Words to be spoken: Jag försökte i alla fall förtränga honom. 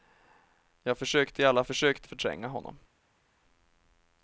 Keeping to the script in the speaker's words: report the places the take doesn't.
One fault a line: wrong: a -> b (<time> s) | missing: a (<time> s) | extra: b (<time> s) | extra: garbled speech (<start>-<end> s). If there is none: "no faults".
wrong: fall -> försökte (1.7 s)